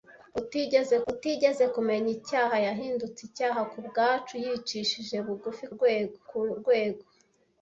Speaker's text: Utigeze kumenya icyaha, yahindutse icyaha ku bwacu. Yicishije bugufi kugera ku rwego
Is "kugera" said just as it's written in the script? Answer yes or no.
no